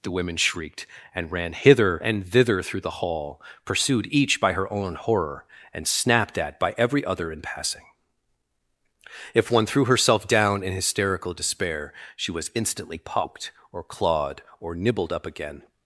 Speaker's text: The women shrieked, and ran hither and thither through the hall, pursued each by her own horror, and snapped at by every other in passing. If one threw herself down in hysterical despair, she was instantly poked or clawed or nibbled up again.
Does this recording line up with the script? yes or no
yes